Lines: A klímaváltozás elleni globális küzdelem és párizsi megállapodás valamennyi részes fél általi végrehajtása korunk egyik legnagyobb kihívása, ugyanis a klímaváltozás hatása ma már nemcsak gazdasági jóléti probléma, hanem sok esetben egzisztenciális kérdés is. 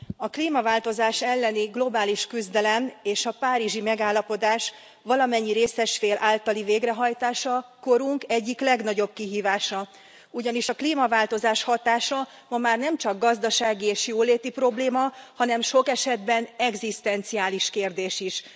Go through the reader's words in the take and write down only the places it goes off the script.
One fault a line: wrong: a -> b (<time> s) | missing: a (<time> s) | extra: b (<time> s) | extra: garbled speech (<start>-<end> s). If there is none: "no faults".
extra: a (3.2 s)
extra: és (13.8 s)